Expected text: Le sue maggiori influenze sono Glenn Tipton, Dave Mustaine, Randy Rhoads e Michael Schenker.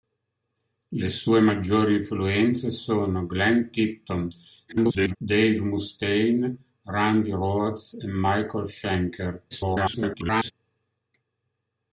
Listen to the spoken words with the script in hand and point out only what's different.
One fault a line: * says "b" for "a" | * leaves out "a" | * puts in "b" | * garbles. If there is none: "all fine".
* garbles
* garbles